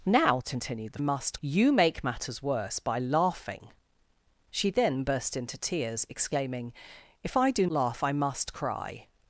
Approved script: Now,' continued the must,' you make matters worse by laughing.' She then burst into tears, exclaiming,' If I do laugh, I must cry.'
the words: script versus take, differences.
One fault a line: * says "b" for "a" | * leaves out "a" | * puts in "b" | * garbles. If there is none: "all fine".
all fine